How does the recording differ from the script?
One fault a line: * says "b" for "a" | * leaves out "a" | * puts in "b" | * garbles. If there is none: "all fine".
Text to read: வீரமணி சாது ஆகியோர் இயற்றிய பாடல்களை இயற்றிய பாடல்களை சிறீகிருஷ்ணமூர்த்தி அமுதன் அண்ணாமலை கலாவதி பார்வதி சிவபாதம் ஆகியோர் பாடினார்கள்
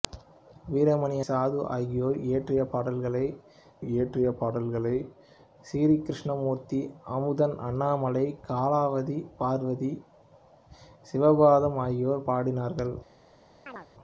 all fine